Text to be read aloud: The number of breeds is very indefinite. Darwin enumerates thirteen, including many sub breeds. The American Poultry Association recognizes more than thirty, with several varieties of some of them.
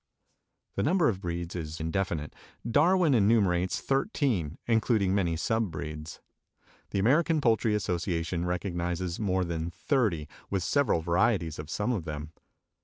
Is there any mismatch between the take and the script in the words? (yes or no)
yes